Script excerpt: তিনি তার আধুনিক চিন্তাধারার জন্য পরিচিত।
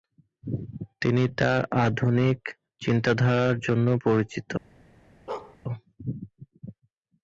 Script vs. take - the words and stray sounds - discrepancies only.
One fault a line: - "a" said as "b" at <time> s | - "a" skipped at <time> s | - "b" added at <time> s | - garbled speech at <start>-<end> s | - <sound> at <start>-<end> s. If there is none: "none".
- bark at 5.3-5.6 s